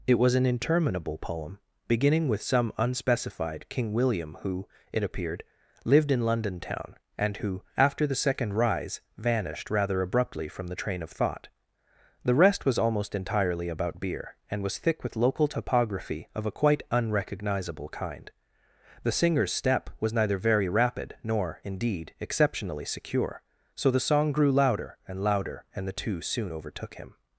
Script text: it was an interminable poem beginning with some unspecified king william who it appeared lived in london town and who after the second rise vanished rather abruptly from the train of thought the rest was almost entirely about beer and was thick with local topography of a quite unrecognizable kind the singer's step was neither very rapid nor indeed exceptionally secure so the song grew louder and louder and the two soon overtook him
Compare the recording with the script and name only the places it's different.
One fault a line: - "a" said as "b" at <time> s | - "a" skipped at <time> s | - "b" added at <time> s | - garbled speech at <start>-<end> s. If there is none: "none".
none